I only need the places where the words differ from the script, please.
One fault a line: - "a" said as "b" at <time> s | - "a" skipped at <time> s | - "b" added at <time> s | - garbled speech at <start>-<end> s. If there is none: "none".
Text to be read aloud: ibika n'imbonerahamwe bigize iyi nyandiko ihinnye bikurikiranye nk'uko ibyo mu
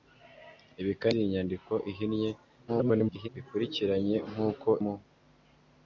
- "n'imbonerahamwe bigize" skipped at 1.1 s
- garbled speech at 2.7-3.3 s
- "ibyo" skipped at 4.7 s